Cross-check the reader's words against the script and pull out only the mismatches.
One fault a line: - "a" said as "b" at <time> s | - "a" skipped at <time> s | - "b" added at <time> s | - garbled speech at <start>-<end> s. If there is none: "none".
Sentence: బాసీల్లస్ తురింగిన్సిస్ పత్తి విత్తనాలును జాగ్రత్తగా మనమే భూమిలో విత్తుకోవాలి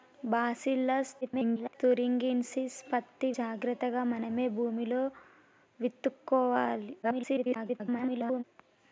- garbled speech at 1.2-1.7 s
- "విత్తనాలును" skipped at 3.3 s
- garbled speech at 7.0-8.4 s